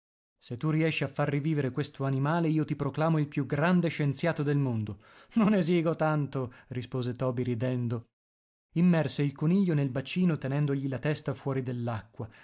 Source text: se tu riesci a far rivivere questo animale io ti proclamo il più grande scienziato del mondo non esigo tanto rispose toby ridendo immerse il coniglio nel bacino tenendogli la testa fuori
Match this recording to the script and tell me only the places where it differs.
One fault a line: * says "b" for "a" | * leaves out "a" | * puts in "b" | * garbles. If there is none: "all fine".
all fine